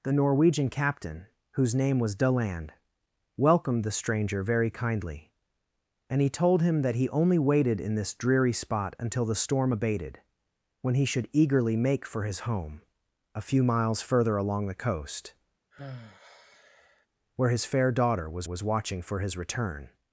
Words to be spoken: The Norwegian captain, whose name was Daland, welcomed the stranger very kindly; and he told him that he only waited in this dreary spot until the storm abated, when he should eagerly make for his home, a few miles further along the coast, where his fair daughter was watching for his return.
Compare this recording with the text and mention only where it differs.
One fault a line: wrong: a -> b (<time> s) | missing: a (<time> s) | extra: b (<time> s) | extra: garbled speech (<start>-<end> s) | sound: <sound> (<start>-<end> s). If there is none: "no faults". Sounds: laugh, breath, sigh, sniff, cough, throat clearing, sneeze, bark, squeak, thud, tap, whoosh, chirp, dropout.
sound: sigh (15.7-17.1 s)
extra: was (18.4 s)